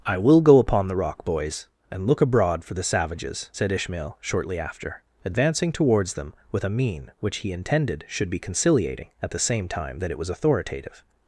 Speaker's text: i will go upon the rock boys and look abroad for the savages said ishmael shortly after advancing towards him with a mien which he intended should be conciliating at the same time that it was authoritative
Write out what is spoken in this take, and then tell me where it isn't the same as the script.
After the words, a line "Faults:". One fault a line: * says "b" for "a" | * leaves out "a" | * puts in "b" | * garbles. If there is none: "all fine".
i will go upon the rock boys and look abroad for the savages said ishmael shortly after advancing towards them with a mien which he intended should be conciliating at the same time that it was authoritative
Faults:
* says "them" for "him"